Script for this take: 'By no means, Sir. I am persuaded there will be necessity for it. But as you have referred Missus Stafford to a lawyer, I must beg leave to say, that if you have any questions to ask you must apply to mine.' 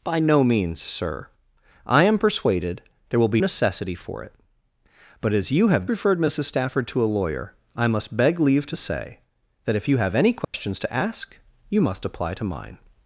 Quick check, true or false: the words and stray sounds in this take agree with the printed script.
false